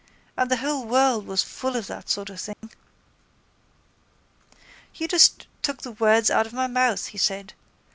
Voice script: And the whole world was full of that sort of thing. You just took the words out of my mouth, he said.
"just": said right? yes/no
yes